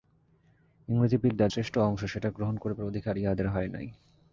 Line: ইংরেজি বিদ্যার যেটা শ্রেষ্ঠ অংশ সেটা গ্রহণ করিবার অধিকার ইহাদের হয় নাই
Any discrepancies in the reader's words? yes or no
yes